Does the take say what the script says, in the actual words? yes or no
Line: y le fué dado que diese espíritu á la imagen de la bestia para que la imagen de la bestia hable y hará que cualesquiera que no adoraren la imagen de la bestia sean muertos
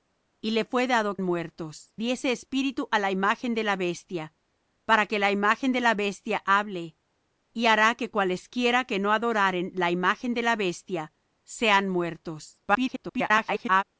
no